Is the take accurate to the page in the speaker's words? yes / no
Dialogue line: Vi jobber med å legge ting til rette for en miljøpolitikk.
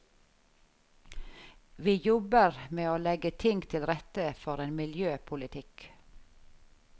yes